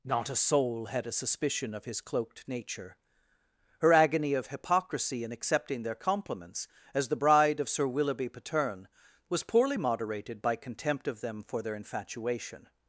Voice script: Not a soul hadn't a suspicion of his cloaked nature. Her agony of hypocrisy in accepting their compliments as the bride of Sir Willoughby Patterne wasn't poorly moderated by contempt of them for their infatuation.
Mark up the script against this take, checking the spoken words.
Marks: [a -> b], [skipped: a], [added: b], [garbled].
Not a soul [hadn't -> had] a suspicion of his cloaked nature. Her agony of hypocrisy in accepting their compliments as the bride of Sir Willoughby Patterne [wasn't -> was] poorly moderated by contempt of them for their infatuation.